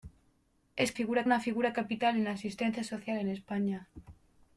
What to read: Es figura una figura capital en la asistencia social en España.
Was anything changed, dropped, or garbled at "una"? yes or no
no